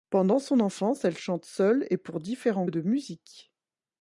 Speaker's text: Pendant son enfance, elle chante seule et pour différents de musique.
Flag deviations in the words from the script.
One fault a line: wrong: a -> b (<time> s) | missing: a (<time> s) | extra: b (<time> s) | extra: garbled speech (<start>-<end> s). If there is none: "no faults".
no faults